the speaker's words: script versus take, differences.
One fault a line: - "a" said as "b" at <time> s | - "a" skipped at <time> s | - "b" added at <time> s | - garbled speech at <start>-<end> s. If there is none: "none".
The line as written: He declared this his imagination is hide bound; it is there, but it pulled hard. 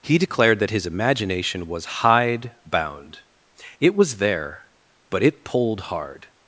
- "this" said as "that" at 0.6 s
- "is" said as "was" at 1.7 s
- "is" said as "was" at 4.0 s